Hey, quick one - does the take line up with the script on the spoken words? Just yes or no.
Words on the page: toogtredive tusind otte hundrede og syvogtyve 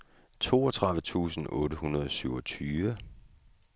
yes